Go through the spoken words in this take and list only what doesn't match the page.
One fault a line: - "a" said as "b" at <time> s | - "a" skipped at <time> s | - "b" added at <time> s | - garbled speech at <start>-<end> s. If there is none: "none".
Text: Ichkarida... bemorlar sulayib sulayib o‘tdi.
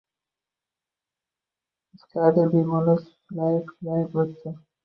none